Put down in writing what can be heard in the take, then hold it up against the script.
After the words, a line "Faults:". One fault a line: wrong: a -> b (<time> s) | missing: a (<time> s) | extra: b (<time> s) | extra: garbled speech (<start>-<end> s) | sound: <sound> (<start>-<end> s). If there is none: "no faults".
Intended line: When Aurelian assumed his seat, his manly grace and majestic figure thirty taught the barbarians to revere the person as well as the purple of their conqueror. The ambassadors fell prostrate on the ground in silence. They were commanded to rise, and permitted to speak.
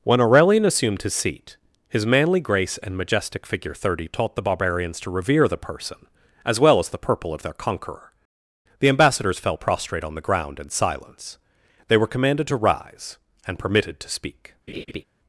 When Aurelian assumed his seat, his manly grace and majestic figure thirty taught the barbarians to revere the person as well as the purple of their conqueror. The ambassadors fell prostrate on the ground in silence. They were commanded to rise, and permitted to speak.
Faults:
sound: laugh (14.7-15.0 s)